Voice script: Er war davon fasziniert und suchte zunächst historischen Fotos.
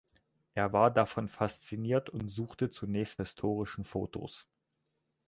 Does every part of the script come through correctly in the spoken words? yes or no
yes